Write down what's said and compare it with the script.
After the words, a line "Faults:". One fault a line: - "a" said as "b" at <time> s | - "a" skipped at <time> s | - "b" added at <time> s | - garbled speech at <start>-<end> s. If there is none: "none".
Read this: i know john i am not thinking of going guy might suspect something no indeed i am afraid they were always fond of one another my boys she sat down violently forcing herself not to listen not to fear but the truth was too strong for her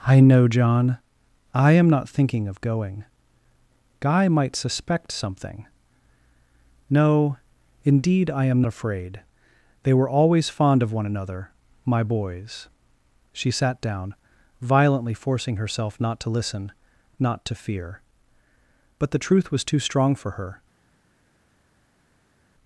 i know john i am not thinking of going guy might suspect something no indeed i am afraid they were always fond of one another my boys she sat down violently forcing herself not to listen not to fear but the truth was too strong for her
Faults:
none